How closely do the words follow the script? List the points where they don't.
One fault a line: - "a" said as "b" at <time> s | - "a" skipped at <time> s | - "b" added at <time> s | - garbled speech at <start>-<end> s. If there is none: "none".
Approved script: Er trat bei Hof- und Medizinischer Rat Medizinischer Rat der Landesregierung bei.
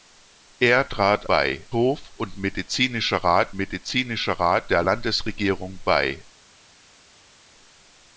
none